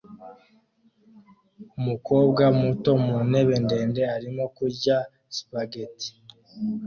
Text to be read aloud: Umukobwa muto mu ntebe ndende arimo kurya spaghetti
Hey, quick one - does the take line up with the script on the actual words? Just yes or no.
yes